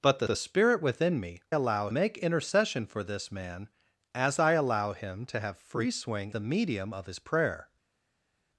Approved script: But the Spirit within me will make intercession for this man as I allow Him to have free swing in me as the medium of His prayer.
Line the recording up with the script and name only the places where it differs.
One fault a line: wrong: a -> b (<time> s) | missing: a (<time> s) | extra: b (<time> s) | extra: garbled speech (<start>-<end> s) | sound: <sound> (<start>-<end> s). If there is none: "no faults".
extra: the (0.2 s)
wrong: will -> allow (1.5 s)
missing: in me as (6.3 s)